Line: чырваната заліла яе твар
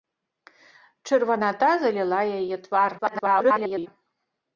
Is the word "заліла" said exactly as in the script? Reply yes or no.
yes